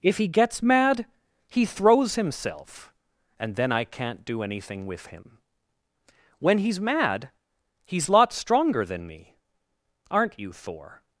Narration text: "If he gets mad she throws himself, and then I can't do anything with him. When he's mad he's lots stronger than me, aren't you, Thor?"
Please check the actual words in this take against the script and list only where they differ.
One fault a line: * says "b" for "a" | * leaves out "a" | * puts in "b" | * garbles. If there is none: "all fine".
* says "he" for "she"